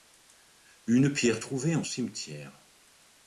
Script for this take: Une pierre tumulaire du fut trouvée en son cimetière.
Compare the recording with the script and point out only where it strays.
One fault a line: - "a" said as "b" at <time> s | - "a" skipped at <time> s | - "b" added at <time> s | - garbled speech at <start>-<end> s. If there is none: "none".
- "tumulaire du fut" skipped at 1.4 s
- "son" skipped at 1.8 s